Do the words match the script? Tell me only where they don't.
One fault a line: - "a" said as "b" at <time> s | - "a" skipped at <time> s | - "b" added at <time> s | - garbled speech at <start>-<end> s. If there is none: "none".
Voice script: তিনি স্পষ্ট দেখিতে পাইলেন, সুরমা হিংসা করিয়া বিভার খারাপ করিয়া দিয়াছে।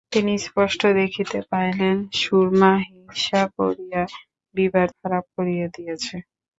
none